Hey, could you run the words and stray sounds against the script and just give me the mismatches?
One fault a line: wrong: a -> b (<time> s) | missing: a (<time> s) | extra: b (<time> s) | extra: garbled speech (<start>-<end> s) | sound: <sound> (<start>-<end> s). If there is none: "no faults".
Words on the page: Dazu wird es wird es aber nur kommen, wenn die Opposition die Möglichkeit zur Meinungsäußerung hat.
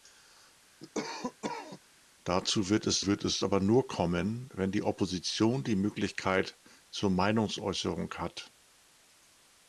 sound: cough (0.8-1.8 s)